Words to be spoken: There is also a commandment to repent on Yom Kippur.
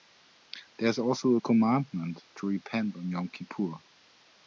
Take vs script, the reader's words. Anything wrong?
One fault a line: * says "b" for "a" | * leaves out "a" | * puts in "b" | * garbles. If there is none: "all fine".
all fine